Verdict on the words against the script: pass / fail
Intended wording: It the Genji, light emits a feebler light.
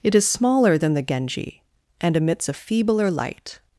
fail